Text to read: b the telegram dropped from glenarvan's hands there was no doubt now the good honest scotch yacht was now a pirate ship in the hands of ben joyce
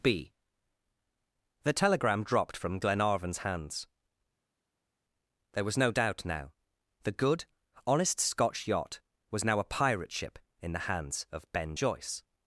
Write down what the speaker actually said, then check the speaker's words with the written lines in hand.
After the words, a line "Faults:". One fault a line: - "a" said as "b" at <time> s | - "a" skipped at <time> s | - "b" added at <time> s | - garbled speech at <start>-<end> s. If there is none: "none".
b the telegram dropped from glenarvan's hands there was no doubt now the good honest scotch yacht was now a pirate ship in the hands of ben joyce
Faults:
none